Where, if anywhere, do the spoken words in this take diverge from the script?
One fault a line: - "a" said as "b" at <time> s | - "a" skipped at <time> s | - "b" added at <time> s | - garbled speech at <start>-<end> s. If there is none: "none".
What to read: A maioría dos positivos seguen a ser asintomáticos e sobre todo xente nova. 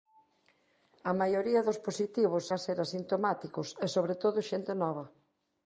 - "seguen" skipped at 2.5 s